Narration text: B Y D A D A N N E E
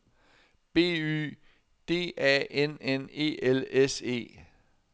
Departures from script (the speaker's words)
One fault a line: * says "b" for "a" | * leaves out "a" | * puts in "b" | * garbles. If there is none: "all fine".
* leaves out "D A"
* puts in "L S"